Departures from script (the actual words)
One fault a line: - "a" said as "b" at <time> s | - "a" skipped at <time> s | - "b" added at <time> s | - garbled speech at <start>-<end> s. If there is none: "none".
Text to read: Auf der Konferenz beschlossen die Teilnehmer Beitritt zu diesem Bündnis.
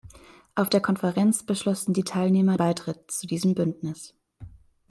none